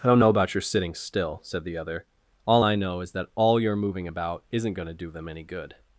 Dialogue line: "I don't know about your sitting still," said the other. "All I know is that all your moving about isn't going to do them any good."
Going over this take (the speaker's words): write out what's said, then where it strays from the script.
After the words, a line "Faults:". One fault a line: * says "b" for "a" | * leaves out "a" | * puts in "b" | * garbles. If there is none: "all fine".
"I don't know about your sitting still," said the other. "All I know is that all your moving about isn't going to do them any good."
Faults:
all fine